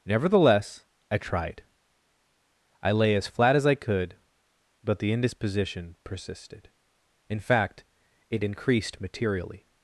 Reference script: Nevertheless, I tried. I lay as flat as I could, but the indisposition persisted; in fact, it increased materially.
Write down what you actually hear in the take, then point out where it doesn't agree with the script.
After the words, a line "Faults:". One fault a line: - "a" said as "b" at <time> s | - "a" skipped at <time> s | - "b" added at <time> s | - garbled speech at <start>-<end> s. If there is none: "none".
Nevertheless, I tried. I lay as flat as I could, but the indisposition persisted; in fact, it increased materially.
Faults:
none